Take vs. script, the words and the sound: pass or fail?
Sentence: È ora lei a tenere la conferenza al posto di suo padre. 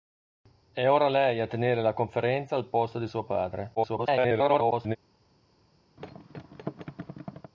fail